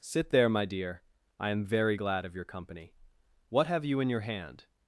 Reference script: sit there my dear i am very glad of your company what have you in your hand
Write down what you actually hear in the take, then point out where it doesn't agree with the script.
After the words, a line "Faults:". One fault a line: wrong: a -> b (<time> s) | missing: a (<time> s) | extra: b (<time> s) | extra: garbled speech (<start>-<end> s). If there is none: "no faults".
sit there my dear i am very glad of your company what have you in your hand
Faults:
no faults